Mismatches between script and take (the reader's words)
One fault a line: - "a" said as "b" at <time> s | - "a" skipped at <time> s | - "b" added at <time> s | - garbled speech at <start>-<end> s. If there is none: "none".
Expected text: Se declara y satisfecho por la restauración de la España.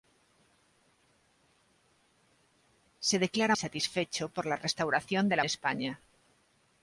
none